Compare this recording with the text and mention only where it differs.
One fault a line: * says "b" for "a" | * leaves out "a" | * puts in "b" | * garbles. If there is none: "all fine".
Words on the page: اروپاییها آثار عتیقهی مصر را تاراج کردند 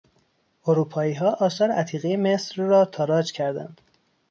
all fine